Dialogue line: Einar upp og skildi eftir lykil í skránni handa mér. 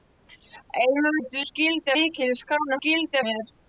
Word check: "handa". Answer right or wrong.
wrong